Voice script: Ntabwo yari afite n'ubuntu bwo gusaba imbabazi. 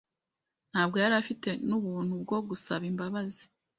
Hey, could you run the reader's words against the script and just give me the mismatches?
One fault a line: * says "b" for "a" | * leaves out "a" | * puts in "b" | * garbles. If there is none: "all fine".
all fine